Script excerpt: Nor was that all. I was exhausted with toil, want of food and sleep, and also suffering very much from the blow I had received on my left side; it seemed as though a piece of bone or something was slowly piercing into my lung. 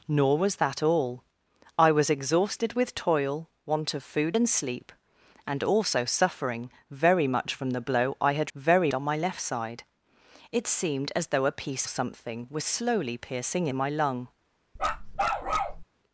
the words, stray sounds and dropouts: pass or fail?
fail